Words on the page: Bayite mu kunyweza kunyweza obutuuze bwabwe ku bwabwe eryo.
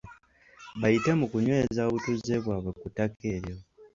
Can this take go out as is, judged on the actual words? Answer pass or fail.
fail